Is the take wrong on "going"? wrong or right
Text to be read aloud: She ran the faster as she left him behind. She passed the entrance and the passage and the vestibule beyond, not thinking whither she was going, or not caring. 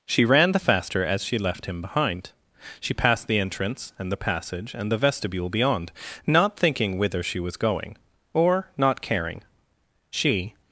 right